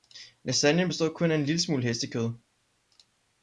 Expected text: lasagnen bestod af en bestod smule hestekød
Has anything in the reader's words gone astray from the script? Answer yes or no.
yes